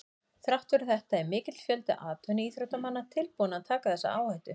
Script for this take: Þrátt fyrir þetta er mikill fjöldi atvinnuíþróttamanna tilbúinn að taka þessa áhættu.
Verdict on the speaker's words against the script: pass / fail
pass